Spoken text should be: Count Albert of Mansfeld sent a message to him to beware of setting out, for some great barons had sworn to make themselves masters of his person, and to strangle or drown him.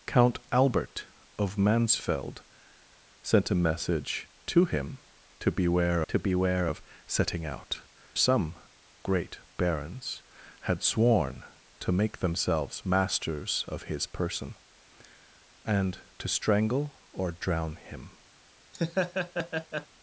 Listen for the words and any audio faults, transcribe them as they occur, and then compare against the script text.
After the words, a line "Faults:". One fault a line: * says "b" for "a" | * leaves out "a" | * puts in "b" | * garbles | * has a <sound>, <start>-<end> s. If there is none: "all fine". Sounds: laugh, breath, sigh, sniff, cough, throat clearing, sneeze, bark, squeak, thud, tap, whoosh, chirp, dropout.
Count Albert of Mansfeld sent a message to him to beware to beware of setting out, some great barons had sworn to make themselves masters of his person, and to strangle or drown him.
Faults:
* puts in "to beware"
* leaves out "for"
* has a laugh, 18.7-19.9 s